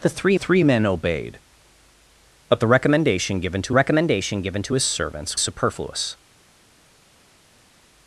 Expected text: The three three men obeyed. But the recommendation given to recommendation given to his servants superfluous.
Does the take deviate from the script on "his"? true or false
false